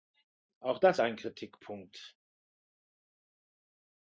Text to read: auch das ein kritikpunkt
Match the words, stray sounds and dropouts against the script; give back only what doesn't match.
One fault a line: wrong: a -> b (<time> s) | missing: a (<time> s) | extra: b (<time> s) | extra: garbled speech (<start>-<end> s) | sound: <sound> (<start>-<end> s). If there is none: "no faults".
no faults